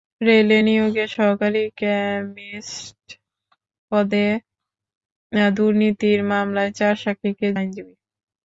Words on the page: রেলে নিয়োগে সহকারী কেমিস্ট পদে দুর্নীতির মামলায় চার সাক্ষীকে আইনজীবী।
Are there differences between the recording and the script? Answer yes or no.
no